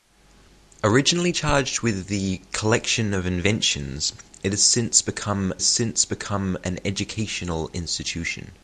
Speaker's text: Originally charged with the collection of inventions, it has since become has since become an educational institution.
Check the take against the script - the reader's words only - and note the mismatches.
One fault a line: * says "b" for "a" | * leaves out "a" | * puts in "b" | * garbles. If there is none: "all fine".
all fine